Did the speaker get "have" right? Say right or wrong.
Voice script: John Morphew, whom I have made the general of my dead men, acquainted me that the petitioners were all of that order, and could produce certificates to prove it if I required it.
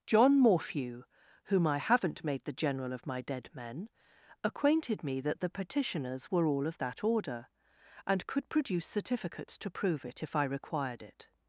wrong